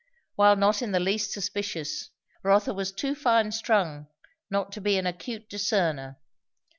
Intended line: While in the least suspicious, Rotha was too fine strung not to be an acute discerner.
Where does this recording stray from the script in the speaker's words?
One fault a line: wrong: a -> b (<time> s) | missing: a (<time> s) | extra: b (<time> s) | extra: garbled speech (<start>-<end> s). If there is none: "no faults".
extra: not (0.6 s)